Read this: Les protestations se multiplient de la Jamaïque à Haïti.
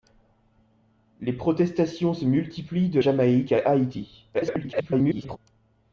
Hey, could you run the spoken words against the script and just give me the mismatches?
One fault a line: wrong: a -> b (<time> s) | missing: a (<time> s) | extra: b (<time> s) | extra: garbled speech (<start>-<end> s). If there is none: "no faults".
missing: la (3.0 s)
extra: garbled speech (4.3-5.4 s)